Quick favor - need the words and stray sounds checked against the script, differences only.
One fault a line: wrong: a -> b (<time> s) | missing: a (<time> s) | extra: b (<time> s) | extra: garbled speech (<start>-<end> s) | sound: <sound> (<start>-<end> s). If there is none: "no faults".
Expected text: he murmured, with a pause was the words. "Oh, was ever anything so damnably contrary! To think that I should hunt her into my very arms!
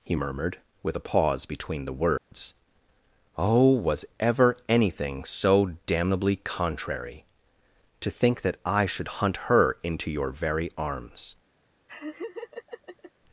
wrong: was -> between (1.4 s)
sound: dropout (2.2-2.3 s)
wrong: my -> your (10.1 s)
sound: laugh (11.9-13.1 s)